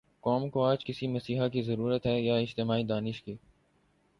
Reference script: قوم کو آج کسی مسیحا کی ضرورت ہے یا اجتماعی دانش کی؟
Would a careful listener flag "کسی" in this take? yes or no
no